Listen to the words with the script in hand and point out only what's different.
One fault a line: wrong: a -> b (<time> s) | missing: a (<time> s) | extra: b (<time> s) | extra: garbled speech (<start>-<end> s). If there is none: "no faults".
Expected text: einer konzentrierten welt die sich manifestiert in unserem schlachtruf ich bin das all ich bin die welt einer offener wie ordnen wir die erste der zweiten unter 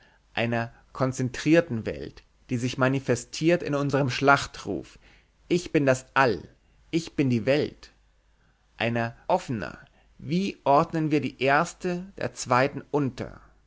no faults